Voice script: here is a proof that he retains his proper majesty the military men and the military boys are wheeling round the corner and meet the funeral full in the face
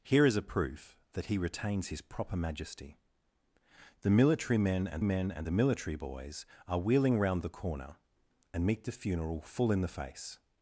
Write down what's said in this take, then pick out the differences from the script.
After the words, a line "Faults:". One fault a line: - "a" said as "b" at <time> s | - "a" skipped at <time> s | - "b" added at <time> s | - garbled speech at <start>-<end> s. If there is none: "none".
here is a proof that he retains his proper majesty the military men and men and the military boys are wheeling round the corner and meet the funeral full in the face
Faults:
- "men and" added at 5.0 s